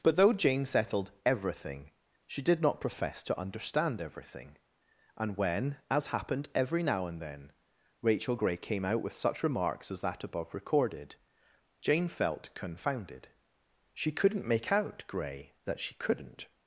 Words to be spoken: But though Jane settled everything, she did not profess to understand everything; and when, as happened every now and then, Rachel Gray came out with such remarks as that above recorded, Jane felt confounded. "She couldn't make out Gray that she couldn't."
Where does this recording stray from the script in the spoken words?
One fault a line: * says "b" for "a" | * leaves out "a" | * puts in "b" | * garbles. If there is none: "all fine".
all fine